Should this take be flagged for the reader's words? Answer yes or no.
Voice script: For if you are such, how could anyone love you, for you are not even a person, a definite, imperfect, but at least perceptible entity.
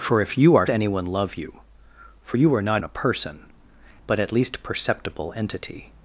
yes